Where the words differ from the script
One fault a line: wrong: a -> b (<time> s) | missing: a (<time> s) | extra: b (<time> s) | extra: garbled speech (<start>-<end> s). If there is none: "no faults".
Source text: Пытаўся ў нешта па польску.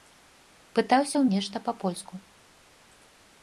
no faults